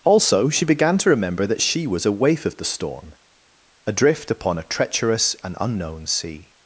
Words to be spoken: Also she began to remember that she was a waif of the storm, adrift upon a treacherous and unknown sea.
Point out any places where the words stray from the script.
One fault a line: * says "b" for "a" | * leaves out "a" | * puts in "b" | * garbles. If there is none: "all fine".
all fine